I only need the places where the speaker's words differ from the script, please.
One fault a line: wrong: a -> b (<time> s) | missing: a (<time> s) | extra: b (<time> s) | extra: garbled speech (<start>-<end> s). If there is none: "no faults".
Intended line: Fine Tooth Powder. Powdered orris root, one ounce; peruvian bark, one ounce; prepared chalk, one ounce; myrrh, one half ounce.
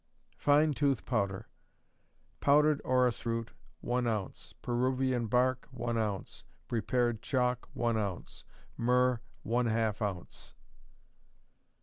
no faults